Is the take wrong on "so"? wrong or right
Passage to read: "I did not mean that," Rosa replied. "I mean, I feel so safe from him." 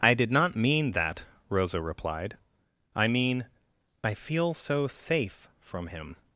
right